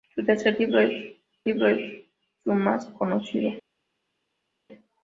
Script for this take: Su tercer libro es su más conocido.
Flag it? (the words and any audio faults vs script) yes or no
yes